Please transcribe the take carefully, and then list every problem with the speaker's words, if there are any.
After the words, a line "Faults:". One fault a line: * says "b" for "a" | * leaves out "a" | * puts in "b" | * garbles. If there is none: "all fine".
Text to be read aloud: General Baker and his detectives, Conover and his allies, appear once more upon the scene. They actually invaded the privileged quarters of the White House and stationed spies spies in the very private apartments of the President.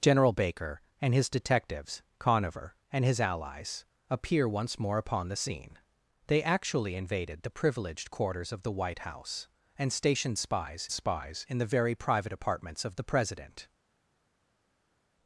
General Baker and his detectives, Conover and his allies, appear once more upon the scene. They actually invaded the privileged quarters of the White House and stationed spies spies in the very private apartments of the President.
Faults:
all fine